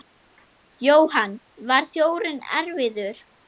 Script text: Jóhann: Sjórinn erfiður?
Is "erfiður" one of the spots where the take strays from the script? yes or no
no